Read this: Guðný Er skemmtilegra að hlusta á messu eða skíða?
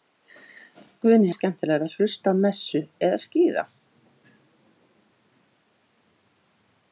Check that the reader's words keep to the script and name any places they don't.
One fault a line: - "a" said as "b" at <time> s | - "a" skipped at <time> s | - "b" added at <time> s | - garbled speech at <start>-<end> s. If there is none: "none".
none